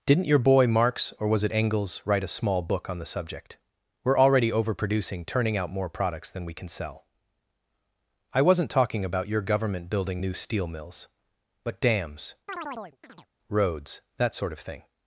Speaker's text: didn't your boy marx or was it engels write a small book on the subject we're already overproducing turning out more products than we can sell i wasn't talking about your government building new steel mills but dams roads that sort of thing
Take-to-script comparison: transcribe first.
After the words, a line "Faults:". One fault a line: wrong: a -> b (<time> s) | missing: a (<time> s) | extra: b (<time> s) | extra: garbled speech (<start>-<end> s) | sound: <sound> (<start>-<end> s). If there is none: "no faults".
didn't your boy marx or was it engels write a small book on the subject we're already overproducing turning out more products than we can sell i wasn't talking about your government building new steel mills but dams roads that sort of thing
Faults:
sound: chirp (12.5-13.3 s)